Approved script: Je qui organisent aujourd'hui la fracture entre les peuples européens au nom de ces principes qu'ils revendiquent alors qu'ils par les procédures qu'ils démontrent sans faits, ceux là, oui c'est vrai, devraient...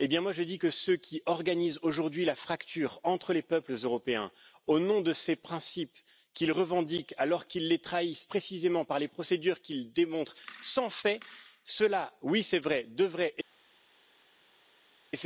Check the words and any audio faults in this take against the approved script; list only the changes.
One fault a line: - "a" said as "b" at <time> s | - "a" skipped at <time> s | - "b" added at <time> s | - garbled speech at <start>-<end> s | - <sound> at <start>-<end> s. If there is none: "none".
- "dis que ceux" added at 0.4 s
- "les trahissent précisément" added at 7.7 s